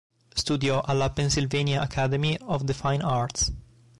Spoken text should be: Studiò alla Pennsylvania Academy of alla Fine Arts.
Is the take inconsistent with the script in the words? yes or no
yes